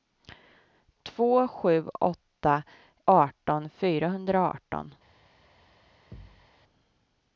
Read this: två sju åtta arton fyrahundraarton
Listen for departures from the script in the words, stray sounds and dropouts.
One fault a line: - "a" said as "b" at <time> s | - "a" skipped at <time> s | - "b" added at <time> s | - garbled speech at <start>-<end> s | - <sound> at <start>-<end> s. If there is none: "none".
- thud at 6.1-6.5 s